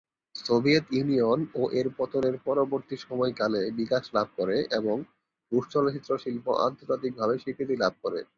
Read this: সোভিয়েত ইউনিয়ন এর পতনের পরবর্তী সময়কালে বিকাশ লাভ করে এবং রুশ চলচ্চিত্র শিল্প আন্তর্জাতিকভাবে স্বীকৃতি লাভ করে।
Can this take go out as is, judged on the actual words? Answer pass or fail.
fail